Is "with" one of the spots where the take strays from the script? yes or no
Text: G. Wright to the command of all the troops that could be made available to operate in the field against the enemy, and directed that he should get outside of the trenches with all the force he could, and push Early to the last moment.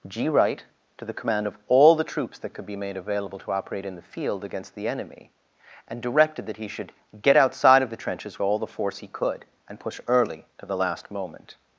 yes